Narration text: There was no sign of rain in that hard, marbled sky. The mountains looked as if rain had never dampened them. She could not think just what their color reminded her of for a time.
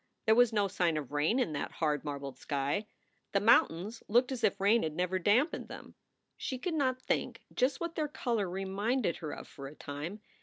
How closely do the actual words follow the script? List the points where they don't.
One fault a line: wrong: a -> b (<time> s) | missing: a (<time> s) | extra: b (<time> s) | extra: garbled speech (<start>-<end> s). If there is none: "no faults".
no faults